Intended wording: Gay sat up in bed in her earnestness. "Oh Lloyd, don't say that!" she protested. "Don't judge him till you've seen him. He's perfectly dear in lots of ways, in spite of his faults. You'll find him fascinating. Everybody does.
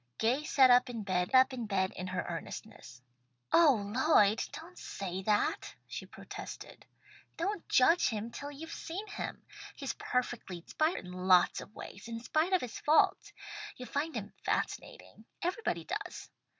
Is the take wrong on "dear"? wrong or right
wrong